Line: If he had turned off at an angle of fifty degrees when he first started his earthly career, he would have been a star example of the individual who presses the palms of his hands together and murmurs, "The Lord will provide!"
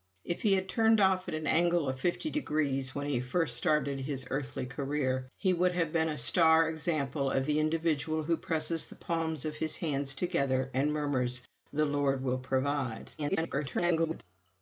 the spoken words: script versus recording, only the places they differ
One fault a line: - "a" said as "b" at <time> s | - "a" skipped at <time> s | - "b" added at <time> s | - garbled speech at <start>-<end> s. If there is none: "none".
- garbled speech at 13.2-14.2 s